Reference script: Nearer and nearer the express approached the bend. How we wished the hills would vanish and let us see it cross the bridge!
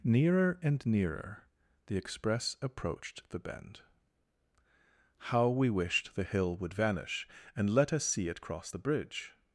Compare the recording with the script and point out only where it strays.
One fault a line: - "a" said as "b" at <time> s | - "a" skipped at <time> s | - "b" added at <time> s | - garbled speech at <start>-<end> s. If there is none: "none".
- "hills" said as "hill" at 6.2 s